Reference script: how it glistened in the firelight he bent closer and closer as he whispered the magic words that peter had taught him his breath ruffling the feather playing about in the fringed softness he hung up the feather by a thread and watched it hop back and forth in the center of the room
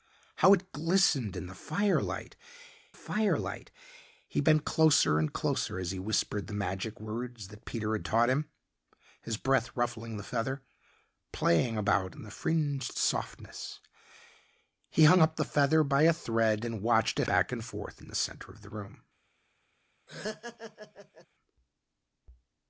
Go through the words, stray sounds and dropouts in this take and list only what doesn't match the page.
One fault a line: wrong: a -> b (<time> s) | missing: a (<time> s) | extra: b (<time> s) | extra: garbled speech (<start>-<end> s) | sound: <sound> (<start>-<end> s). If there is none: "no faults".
extra: firelight (2.9 s)
missing: hop (17.3 s)
sound: laugh (20.1-21.3 s)